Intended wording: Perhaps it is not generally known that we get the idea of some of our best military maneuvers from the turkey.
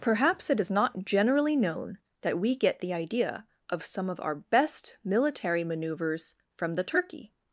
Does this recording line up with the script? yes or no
yes